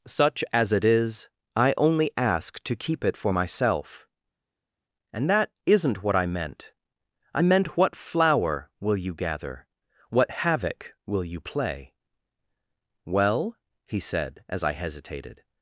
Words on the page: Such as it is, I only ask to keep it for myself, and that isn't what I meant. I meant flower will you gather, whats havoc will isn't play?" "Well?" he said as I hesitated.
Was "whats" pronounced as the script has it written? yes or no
no